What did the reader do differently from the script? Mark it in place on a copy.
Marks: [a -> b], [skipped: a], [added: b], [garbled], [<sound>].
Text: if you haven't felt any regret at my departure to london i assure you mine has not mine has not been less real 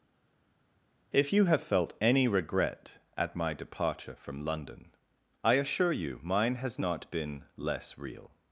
if you [haven't -> have] felt any regret at my departure [to -> from] london i assure you mine has not [skipped: mine has not] been less real